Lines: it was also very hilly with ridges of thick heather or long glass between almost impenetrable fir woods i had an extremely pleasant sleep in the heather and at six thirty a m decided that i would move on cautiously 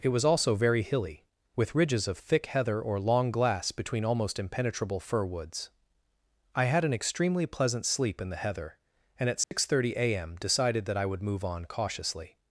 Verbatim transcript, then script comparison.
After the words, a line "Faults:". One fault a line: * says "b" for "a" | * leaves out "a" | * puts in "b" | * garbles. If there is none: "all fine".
it was also very hilly with ridges of thick heather or long glass between almost impenetrable fir woods i had an extremely pleasant sleep in the heather and at six thirty a m decided that i would move on cautiously
Faults:
all fine